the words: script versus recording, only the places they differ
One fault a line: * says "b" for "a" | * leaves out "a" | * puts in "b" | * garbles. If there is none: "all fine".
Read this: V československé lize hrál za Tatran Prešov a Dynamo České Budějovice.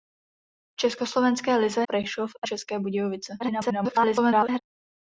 * leaves out "hrál za Tatran"
* leaves out "Dynamo"
* garbles